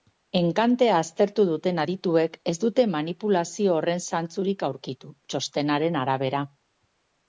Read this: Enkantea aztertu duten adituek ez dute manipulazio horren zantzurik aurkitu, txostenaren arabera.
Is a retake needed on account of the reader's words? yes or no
no